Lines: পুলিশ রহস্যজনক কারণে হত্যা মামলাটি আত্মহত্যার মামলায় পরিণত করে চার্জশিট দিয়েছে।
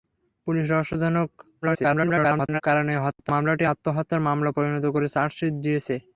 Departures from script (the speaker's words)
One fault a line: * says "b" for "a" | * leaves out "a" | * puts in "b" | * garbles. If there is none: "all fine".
* garbles